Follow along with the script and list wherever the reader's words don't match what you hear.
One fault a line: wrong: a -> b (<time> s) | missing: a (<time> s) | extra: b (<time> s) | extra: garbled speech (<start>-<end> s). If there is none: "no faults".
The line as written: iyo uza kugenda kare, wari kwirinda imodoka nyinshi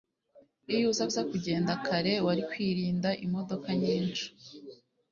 extra: uza (1.1 s)